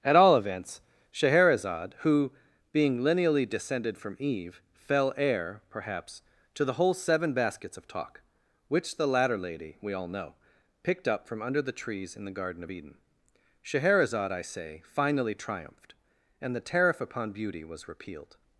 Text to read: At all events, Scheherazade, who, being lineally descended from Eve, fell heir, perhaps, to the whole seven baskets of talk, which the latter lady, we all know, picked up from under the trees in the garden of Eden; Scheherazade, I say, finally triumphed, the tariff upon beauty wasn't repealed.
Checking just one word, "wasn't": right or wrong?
wrong